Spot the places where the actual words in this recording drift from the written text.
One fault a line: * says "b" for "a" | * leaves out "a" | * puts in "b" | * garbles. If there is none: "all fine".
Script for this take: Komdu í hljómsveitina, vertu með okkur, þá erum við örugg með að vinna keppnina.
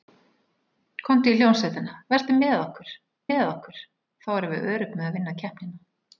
* puts in "með okkur"